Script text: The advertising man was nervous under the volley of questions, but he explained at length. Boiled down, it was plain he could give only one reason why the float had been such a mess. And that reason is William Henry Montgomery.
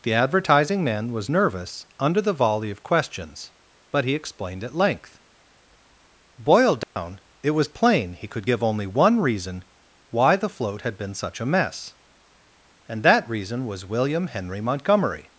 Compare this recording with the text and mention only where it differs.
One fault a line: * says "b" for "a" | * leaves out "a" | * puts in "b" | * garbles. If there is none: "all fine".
* says "was" for "is"